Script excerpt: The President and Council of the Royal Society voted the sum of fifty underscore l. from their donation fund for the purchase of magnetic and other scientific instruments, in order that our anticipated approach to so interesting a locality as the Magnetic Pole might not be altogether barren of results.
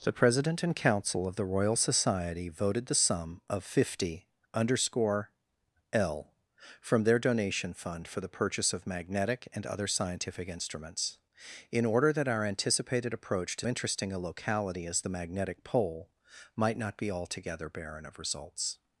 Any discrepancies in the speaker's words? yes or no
yes